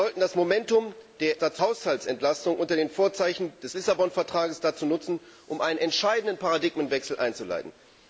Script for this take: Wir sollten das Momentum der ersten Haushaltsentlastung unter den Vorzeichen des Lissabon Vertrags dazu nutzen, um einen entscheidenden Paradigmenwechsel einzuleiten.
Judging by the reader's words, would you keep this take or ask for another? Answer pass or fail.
fail